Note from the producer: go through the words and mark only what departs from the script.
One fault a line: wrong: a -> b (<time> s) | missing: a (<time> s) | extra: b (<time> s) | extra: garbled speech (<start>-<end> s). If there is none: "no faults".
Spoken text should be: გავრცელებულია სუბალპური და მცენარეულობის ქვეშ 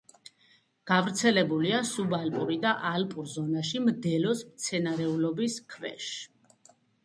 extra: ალპურ ზონაში მდელოს (2.9 s)